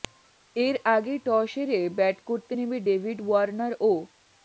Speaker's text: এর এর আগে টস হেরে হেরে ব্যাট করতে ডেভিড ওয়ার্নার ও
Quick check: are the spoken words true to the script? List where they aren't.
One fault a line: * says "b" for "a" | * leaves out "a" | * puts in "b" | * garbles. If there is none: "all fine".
* leaves out "এর"
* leaves out "হেরে"
* puts in "নেমে"